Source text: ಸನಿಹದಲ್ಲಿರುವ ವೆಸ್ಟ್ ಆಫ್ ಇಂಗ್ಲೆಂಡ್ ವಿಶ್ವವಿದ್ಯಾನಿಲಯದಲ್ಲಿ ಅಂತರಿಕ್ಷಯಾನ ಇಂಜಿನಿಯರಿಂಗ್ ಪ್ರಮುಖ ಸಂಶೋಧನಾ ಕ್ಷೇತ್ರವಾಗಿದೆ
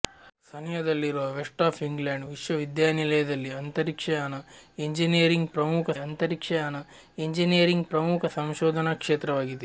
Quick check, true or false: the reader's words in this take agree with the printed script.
false